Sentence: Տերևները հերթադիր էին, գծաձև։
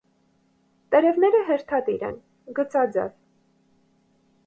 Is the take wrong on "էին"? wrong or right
wrong